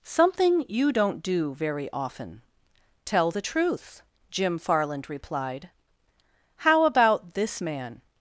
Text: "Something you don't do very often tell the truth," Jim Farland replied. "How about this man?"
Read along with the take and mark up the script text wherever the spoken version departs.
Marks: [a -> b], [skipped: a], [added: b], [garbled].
"Something you don't do very often tell the truth," Jim Farland replied. "How about this man?"